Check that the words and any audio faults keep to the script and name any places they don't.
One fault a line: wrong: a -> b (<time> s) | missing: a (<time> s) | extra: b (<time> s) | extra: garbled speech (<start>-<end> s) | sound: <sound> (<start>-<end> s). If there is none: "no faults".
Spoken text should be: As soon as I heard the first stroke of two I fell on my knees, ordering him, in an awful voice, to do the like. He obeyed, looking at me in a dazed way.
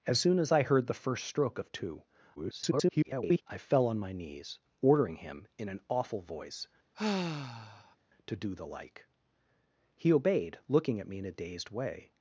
extra: garbled speech (2.3-3.4 s)
sound: sigh (6.9-8.0 s)